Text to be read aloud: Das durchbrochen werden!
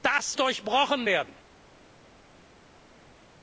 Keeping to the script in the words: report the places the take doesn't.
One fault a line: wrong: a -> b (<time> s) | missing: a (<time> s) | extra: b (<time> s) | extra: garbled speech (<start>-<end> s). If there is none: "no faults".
no faults